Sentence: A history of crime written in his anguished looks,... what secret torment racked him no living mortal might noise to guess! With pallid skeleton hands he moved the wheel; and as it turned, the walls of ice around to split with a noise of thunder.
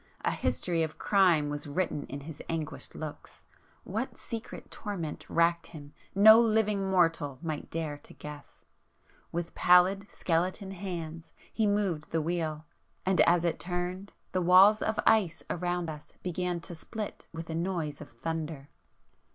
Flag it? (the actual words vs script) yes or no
yes